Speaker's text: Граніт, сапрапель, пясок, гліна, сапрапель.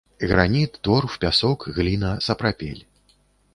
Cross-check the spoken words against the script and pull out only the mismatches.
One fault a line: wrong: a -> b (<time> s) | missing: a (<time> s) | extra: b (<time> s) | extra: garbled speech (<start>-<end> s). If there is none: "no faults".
wrong: сапрапель -> торф (0.8 s)